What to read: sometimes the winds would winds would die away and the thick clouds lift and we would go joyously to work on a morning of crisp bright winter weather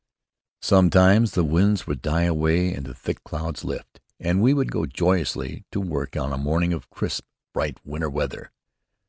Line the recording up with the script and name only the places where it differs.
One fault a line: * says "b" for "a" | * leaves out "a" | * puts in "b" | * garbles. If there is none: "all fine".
* leaves out "winds would"